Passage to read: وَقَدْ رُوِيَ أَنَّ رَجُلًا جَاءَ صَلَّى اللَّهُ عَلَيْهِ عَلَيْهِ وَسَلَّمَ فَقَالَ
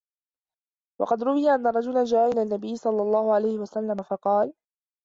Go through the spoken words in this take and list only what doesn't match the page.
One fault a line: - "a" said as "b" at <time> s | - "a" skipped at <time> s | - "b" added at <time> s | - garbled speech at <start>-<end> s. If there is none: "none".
- "إلَى النَّبِيِّ" added at 2.3 s
- "عَلَيْهِ" skipped at 3.6 s